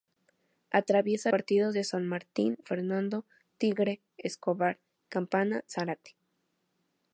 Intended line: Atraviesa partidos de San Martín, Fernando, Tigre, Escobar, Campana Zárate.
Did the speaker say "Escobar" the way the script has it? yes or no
yes